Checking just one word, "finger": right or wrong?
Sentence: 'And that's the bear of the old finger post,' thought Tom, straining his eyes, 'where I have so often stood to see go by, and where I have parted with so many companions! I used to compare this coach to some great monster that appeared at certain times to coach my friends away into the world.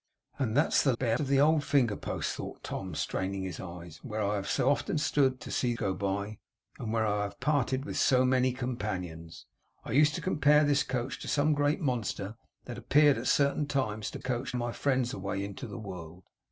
right